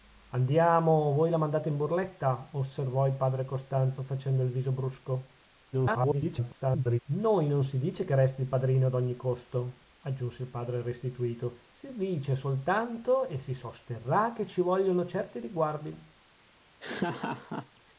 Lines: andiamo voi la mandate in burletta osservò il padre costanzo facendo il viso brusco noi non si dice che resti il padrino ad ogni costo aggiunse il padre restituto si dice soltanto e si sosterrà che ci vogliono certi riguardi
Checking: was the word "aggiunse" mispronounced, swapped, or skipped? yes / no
no